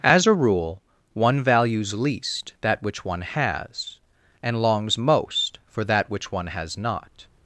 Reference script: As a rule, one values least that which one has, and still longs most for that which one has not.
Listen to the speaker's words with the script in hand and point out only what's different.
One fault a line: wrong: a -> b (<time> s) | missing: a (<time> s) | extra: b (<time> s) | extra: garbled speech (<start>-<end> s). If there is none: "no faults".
missing: still (4.6 s)